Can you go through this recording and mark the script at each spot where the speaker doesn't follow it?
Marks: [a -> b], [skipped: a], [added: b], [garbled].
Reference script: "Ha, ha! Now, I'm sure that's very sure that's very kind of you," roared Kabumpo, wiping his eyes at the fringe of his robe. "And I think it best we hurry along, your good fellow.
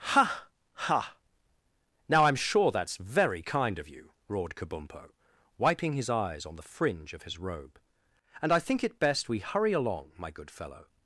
"Ha, ha! Now, I'm sure that's very [skipped: sure that's very] kind of you," roared Kabumpo, wiping his eyes [at -> on] the fringe of his robe. "And I think it best we hurry along, [your -> my] good fellow.